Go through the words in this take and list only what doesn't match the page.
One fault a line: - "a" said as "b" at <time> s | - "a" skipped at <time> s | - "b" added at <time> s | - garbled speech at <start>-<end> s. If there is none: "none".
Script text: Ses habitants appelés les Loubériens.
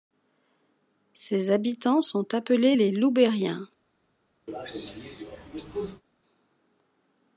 - "sont" added at 2.0 s